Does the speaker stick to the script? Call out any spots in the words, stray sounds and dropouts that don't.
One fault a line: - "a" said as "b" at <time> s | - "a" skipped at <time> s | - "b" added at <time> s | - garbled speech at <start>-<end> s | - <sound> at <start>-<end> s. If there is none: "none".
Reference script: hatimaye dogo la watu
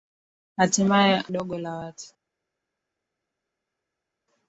none